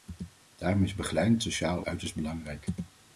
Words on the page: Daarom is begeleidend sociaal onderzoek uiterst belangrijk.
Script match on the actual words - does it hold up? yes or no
no